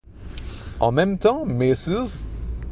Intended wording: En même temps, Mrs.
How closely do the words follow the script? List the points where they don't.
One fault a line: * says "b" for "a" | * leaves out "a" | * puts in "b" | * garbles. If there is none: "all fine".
all fine